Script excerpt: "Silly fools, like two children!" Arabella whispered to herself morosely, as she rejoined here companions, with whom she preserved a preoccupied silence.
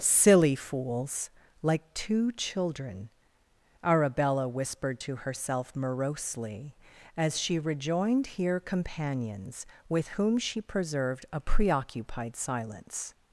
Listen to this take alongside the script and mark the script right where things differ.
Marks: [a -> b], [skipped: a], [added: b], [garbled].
"Silly fools, like two children!" Arabella whispered to herself morosely, as she rejoined here companions, with whom she preserved a preoccupied silence.